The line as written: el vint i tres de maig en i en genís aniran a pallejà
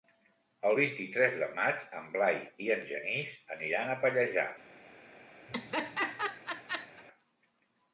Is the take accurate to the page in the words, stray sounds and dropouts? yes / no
no